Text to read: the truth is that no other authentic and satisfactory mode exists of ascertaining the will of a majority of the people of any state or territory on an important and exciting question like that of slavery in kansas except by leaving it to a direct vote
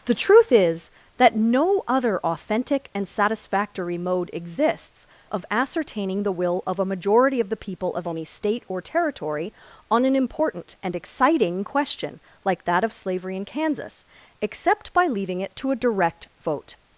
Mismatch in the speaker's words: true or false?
false